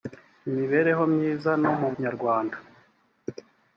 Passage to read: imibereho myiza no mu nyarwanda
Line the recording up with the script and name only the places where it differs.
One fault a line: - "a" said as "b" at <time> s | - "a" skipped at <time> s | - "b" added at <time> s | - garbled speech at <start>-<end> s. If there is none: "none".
none